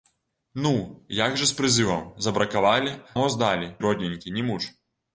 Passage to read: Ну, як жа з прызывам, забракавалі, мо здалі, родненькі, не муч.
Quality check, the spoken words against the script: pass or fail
pass